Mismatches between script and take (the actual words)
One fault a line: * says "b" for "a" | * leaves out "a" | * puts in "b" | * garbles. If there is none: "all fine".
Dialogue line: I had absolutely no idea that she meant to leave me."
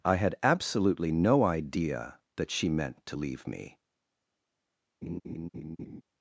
all fine